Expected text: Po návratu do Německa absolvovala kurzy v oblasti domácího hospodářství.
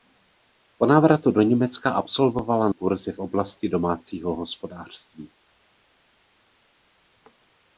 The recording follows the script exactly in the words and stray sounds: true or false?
true